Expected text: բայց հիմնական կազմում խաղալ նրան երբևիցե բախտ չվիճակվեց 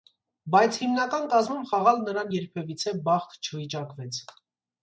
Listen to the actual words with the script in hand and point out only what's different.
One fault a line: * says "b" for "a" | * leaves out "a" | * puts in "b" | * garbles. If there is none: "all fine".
all fine